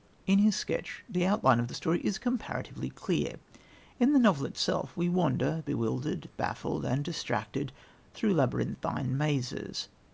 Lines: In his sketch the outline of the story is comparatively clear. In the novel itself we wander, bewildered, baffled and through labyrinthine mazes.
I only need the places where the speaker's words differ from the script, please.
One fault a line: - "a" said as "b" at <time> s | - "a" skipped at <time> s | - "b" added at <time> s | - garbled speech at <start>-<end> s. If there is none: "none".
- "distracted" added at 7.0 s